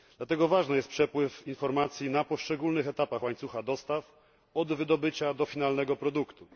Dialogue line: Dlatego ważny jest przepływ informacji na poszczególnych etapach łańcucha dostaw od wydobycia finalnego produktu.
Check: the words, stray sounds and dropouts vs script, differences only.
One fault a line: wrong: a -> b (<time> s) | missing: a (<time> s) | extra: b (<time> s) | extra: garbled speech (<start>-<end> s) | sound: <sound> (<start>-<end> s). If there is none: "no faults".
extra: do (5.3 s)